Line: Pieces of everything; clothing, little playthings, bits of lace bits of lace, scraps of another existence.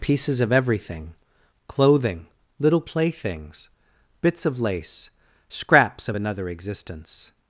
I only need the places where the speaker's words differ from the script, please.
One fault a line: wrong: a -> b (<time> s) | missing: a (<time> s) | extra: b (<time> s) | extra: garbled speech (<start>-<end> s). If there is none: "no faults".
missing: bits of lace (5.1 s)